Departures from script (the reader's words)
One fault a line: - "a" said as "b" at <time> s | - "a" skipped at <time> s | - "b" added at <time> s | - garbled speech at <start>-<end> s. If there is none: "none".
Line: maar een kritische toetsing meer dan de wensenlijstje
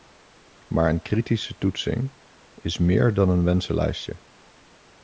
- "is" added at 2.5 s
- "de" said as "een" at 3.3 s